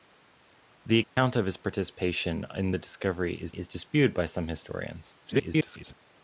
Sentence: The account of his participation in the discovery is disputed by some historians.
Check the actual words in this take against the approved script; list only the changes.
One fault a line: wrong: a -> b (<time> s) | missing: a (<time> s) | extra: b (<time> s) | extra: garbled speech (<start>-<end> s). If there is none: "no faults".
extra: is (3.5 s)
extra: garbled speech (5.2-5.9 s)